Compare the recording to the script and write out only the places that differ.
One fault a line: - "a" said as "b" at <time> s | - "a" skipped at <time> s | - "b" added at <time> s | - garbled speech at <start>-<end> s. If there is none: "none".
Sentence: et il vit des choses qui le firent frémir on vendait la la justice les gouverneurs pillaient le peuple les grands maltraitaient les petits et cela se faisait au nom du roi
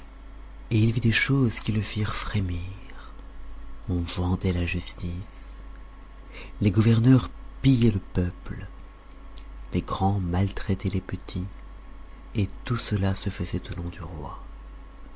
- "la" skipped at 4.6 s
- "tout" added at 12.6 s